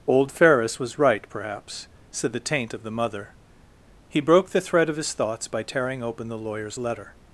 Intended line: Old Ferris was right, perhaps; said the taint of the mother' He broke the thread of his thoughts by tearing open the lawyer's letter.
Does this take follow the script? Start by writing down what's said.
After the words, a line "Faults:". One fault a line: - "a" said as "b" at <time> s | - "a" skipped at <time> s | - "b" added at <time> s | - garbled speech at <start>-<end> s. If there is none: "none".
Old Ferris was right, perhaps; said the taint of the mother' He broke the thread of his thoughts by tearing open the lawyer's letter.
Faults:
none